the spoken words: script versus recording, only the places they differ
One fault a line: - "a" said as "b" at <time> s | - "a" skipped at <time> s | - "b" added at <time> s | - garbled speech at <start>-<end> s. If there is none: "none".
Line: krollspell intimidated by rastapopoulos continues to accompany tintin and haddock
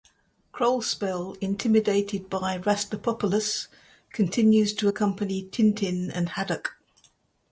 none